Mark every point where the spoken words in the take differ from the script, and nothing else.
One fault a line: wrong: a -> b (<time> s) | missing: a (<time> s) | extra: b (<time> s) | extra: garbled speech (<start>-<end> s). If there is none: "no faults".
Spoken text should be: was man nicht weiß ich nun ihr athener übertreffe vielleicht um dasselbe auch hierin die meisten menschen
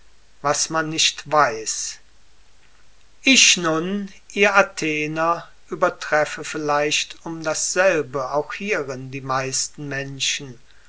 no faults